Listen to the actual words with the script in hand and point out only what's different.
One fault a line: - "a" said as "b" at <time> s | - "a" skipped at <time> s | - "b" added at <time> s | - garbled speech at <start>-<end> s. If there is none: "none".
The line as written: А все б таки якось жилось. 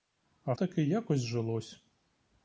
- "все б" skipped at 0.5 s